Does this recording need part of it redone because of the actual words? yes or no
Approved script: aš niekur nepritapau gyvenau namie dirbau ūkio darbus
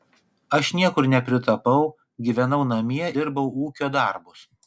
no